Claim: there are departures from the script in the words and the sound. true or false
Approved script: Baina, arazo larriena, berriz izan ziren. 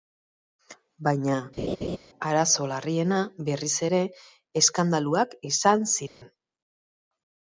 true